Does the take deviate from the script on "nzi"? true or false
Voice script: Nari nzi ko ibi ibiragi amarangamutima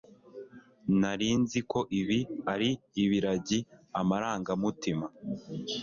false